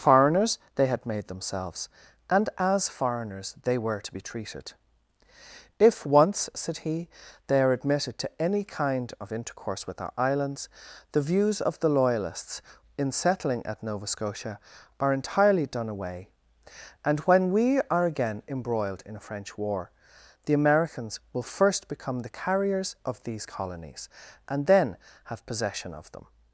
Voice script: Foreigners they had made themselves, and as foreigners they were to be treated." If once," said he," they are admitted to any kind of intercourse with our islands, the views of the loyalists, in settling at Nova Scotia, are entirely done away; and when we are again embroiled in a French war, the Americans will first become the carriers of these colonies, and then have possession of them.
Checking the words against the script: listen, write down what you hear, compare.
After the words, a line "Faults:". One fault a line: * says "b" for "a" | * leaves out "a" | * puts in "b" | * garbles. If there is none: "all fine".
Foreigners they had made themselves, and as foreigners they were to be treated." If once," said he," they are admitted to any kind of intercourse with our islands, the views of the loyalists, in settling at Nova Scotia, are entirely done away; and when we are again embroiled in a French war, the Americans will first become the carriers of these colonies, and then have possession of them.
Faults:
all fine